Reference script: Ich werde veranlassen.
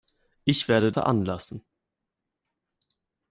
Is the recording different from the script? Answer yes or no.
no